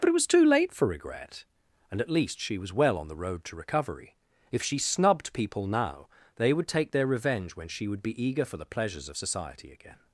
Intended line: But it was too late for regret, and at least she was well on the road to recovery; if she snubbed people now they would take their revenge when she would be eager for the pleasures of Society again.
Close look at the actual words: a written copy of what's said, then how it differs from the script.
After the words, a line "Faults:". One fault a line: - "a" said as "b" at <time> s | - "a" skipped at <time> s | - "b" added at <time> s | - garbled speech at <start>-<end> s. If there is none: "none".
But it was too late for regret, and at least she was well on the road to recovery; if she snubbed people now they would take their revenge when she would be eager for the pleasures of Society again.
Faults:
none